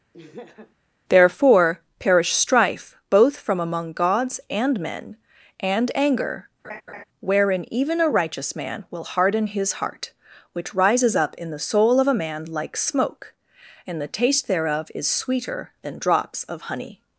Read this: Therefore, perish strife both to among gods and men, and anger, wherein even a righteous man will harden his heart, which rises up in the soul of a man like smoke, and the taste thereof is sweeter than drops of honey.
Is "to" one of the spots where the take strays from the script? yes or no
yes